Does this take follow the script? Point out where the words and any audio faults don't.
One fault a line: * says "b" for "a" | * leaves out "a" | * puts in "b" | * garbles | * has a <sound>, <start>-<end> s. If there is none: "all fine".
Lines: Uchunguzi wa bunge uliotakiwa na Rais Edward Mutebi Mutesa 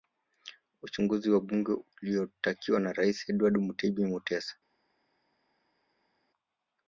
all fine